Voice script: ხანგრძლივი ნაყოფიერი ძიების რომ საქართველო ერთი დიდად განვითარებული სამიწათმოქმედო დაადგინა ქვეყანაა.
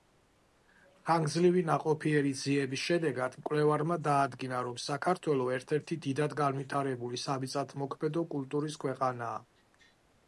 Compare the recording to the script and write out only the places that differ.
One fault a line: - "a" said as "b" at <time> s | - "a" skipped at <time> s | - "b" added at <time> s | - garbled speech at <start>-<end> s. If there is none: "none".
- "შედეგად მკვლევარმა დაადგინა" added at 2.9 s
- "ერთ" added at 5.6 s
- "დაადგინა" said as "კულტურის" at 8.4 s